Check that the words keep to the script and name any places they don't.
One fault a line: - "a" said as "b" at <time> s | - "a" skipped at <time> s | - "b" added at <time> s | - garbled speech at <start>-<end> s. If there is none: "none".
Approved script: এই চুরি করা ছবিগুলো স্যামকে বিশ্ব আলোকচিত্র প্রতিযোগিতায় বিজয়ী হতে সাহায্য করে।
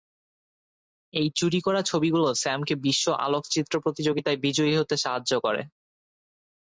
none